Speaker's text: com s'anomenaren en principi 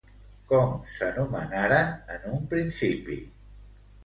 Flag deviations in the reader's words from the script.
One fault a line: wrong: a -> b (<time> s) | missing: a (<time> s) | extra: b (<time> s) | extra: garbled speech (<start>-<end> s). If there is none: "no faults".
extra: un (2.4 s)